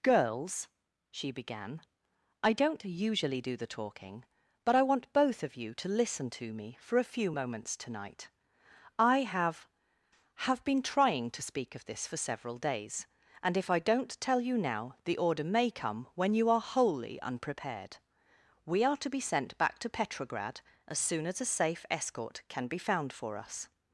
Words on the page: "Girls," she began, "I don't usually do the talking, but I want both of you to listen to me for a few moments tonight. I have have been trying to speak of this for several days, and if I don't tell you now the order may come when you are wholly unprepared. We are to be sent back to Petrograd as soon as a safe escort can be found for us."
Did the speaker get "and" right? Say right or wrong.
right